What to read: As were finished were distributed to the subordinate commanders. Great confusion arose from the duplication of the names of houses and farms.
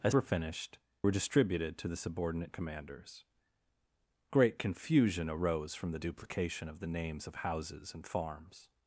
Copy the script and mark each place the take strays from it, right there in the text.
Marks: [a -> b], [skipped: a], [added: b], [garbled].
As were finished were distributed to the subordinate commanders. Great confusion arose from the duplication of the names of houses and farms.